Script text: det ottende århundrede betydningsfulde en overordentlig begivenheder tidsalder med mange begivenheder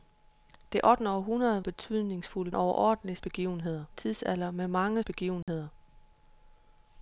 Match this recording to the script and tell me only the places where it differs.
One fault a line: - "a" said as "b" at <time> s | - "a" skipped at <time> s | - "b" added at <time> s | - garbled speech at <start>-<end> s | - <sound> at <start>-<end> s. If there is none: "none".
- dropout at 5.4-5.5 s